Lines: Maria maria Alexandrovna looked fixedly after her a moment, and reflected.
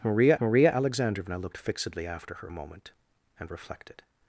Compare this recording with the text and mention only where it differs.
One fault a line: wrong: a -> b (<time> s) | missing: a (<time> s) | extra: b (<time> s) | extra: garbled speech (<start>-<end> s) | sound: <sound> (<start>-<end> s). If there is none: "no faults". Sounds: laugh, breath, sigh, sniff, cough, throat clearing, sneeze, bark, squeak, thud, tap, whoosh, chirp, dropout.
no faults